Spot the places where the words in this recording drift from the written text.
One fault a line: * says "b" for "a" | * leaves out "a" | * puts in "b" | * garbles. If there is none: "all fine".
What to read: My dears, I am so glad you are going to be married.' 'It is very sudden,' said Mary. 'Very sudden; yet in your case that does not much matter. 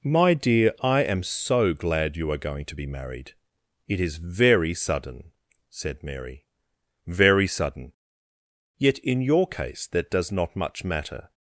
* says "dear" for "dears"